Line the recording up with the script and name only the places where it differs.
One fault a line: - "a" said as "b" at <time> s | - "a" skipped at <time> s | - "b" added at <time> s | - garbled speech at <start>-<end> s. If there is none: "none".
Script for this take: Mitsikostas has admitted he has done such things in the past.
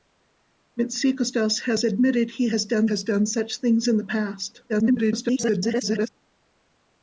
- "has done" added at 2.9 s
- garbled speech at 4.7-6.1 s